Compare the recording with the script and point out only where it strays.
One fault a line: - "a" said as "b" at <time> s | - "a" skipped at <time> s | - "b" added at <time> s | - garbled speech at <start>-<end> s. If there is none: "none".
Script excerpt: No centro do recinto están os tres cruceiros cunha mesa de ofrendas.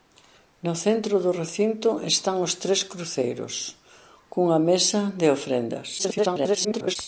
- garbled speech at 6.0-7.0 s